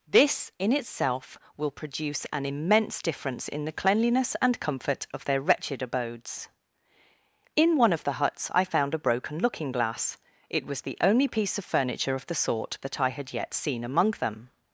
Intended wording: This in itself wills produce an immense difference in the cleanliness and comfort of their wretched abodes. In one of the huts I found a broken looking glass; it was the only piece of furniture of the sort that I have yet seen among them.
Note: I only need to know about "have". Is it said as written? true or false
false